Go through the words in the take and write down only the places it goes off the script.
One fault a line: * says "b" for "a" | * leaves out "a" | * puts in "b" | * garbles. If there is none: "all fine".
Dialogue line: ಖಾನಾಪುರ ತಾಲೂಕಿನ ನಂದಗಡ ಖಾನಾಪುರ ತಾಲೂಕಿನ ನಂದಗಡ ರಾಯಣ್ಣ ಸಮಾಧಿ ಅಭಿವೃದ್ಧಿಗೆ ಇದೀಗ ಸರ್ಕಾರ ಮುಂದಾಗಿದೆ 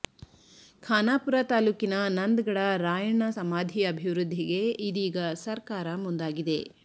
* leaves out "ಖಾನಾಪುರ ತಾಲೂಕಿನ ನಂದಗಡ"